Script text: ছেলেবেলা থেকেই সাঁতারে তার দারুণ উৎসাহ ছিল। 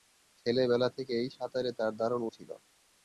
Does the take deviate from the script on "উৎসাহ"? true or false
true